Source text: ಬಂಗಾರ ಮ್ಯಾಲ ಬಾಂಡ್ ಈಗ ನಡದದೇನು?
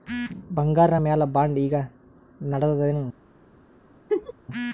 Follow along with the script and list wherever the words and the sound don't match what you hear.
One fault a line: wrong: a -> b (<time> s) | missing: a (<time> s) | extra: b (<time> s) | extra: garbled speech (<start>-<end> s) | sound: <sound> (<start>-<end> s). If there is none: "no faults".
sound: laugh (4.1-4.3 s)